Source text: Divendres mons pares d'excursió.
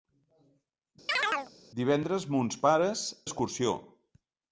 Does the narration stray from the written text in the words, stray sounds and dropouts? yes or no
yes